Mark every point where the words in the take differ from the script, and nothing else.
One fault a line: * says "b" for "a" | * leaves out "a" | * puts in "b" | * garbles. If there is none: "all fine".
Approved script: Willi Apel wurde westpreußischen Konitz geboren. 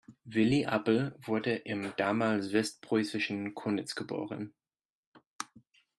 * puts in "im damals"